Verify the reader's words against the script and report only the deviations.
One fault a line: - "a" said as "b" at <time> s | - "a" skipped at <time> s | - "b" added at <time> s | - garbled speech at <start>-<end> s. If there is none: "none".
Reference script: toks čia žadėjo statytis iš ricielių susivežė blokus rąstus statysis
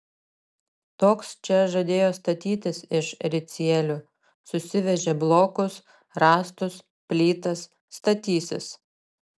- "plytas" added at 7.1 s